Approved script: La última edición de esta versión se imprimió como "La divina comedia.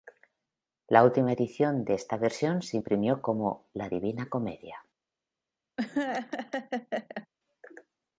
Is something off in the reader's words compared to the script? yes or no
no